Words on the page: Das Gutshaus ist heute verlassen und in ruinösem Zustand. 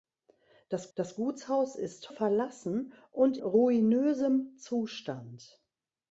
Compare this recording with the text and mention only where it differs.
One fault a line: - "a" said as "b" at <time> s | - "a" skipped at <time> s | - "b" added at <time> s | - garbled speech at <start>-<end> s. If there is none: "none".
- "das" added at 0.9 s
- "heute" skipped at 2.1 s
- "in" skipped at 3.4 s